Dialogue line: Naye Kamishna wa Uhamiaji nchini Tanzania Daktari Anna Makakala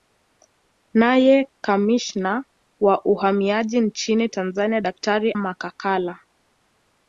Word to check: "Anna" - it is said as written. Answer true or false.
false